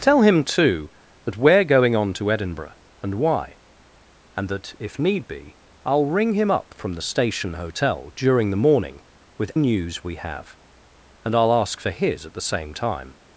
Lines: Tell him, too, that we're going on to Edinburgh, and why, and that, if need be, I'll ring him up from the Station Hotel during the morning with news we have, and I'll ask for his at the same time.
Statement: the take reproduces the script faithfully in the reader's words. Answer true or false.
true